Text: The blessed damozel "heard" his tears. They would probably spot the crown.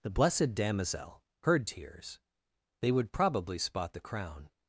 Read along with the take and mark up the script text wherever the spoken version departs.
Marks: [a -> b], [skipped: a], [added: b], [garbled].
The blessed damozel "heard" [skipped: his] tears. They would probably spot the crown.